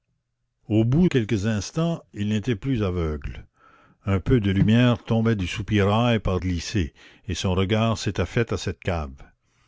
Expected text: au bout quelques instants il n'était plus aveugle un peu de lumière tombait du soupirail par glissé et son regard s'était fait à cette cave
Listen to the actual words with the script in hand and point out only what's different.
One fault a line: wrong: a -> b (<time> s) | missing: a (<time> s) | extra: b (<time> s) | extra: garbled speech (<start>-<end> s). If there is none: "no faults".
no faults